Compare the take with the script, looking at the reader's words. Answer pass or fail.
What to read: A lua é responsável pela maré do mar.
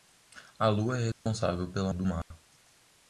fail